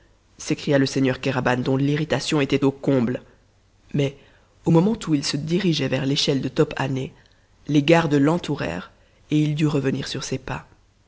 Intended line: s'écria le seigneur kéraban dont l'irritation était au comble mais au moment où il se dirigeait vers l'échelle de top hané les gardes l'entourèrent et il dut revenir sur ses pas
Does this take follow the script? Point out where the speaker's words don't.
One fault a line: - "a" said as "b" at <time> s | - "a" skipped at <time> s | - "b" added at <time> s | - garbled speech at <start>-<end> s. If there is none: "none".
none